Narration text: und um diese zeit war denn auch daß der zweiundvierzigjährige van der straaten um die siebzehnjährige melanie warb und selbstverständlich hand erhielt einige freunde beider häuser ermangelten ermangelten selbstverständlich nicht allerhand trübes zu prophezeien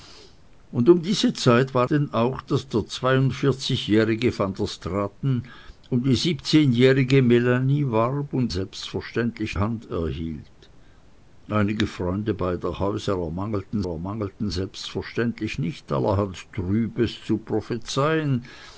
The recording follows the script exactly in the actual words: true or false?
true